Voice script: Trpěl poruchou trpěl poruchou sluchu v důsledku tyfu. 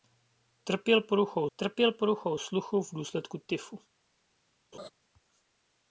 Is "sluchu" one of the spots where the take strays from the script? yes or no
no